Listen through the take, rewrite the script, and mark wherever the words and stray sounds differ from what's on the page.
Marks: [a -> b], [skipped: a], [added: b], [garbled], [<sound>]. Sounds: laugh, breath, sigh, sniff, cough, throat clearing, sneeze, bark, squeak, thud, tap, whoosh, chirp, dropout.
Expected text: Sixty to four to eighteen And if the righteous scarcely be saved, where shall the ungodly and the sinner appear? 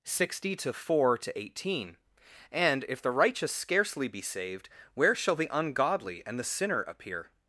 Sixty to four to eighteen And if the righteous scarcely be saved, where shall the ungodly and the sinner appear?